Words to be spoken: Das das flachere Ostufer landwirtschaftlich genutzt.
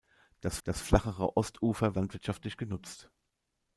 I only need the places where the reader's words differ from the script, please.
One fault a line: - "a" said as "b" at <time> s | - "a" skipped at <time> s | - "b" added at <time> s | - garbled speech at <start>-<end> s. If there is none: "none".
none